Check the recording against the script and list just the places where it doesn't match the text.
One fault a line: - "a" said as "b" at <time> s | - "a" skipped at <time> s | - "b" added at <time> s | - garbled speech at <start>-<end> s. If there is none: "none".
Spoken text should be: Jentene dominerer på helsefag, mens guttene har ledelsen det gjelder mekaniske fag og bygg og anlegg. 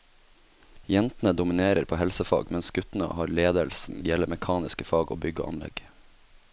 none